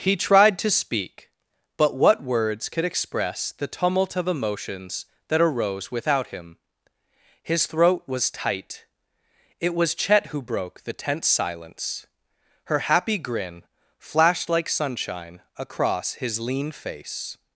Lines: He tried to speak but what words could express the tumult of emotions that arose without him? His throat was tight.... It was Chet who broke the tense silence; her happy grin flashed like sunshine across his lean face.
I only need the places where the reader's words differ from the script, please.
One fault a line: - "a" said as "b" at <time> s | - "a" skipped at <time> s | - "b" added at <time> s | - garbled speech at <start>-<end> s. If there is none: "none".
none